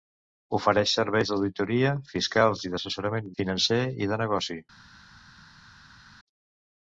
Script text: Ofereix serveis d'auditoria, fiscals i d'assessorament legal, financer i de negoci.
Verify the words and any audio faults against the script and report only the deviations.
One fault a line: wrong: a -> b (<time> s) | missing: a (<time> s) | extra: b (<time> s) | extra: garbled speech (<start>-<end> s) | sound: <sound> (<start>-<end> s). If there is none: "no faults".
missing: legal (3.3 s)